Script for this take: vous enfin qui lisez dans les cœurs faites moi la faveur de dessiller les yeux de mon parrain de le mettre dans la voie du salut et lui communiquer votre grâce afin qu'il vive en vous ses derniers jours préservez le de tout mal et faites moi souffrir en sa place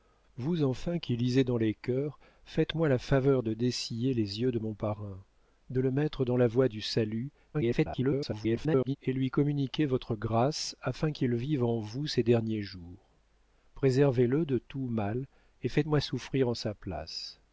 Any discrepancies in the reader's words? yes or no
yes